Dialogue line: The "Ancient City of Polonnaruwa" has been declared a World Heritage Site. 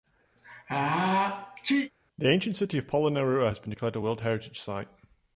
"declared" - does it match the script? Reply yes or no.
yes